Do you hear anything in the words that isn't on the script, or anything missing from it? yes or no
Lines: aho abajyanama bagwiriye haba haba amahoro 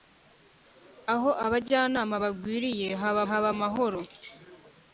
no